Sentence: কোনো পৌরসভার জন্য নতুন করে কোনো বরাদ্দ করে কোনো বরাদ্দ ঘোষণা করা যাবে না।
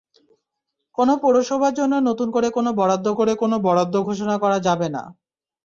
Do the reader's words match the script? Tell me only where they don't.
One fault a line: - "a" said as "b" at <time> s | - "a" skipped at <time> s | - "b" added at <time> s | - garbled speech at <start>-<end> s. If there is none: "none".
none